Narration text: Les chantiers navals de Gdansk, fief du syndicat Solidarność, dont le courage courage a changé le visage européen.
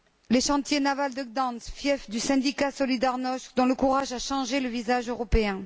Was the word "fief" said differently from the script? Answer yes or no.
no